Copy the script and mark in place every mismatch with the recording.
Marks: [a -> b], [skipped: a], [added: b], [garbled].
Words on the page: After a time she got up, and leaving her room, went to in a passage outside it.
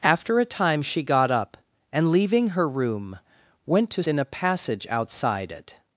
After a time she got up, and leaving her room, went to in a passage outside it.